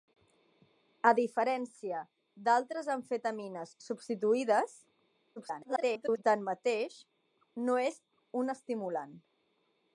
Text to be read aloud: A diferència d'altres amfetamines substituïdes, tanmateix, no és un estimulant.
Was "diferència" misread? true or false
false